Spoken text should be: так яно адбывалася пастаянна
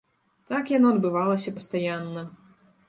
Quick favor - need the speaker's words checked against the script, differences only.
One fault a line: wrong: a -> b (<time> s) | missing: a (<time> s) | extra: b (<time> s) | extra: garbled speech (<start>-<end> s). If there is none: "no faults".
no faults